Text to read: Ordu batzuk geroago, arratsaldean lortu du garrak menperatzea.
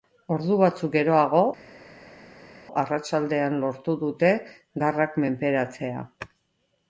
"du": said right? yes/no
no